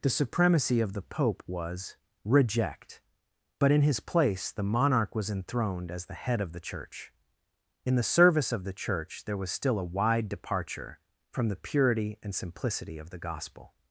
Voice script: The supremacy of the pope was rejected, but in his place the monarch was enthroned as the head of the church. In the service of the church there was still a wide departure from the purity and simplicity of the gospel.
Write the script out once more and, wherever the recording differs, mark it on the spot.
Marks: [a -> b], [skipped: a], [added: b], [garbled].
The supremacy of the pope was [rejected, -> reject] but in his place the monarch was enthroned as the head of the church. In the service of the church there was still a wide departure from the purity and simplicity of the gospel.